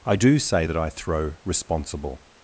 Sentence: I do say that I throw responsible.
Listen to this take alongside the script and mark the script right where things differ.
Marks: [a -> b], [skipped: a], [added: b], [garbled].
I do say that I throw responsible.